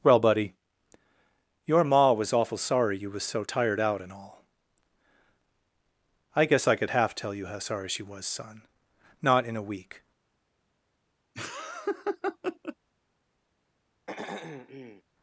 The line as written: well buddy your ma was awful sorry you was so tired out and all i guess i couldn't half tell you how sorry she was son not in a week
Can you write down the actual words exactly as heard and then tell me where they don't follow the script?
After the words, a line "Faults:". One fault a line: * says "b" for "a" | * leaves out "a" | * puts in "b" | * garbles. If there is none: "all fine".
well buddy your ma was awful sorry you was so tired out and all i guess i could half tell you how sorry she was son not in a week
Faults:
* says "could" for "couldn't"